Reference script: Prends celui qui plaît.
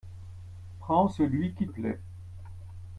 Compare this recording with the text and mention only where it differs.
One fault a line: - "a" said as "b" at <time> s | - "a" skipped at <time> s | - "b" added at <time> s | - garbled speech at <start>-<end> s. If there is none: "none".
none